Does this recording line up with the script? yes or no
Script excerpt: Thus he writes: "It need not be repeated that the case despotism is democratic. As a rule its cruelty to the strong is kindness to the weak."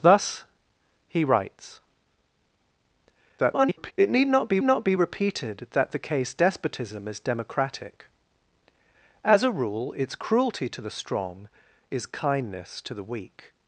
no